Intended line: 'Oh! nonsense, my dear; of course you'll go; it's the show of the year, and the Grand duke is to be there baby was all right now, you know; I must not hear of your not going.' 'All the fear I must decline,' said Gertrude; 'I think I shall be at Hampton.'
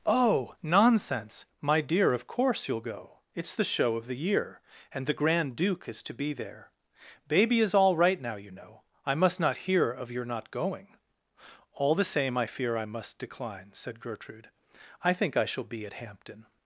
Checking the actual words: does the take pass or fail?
fail